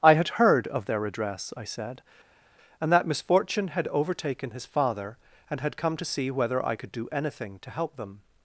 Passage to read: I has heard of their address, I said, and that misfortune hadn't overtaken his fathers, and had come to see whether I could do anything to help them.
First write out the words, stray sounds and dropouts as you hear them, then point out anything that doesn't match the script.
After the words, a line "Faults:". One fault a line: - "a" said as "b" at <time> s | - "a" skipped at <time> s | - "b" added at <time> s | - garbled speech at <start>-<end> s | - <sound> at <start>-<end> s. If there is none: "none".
I had heard of their address, I said, and that misfortune had overtaken his father, and had come to see whether I could do anything to help them.
Faults:
- "has" said as "had" at 0.1 s
- "hadn't" said as "had" at 3.7 s
- "fathers" said as "father" at 4.7 s